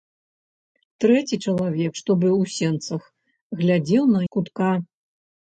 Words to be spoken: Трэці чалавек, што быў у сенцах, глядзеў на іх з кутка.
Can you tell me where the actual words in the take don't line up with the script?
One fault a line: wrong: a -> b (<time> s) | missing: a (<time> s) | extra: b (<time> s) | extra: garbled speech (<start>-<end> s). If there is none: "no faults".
missing: іх (4.2 s)